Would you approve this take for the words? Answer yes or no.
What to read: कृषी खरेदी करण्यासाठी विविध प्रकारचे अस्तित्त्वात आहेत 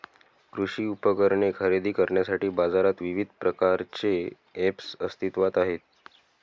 no